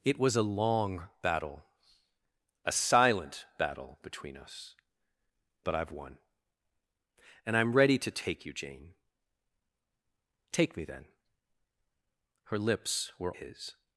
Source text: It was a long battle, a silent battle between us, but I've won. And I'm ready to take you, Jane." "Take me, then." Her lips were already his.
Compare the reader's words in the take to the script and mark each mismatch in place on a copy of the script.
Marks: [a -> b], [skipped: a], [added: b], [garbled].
It was a long battle, a silent battle between us, but I've won. And I'm ready to take you, Jane." "Take me, then." Her lips were [skipped: already] his.